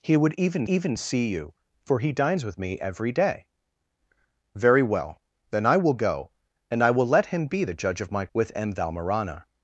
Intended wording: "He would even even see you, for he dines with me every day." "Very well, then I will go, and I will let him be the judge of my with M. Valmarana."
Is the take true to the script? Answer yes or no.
yes